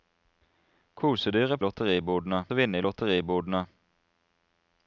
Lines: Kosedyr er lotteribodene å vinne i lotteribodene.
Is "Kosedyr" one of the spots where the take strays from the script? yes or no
no